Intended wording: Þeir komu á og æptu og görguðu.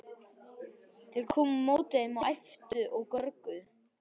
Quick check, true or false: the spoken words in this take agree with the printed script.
false